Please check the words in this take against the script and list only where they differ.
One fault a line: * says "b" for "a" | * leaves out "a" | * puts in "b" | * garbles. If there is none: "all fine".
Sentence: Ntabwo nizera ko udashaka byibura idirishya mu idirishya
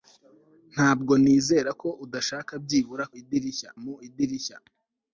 all fine